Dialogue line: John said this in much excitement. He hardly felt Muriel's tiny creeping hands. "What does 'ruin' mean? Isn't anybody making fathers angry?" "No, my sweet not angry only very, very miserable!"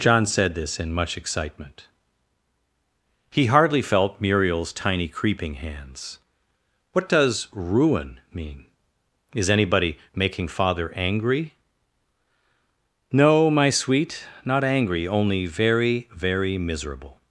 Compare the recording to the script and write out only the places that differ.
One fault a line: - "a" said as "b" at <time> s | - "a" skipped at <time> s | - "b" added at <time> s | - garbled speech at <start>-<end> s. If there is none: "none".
- "Isn't" said as "Is" at 9.3 s
- "fathers" said as "father" at 10.5 s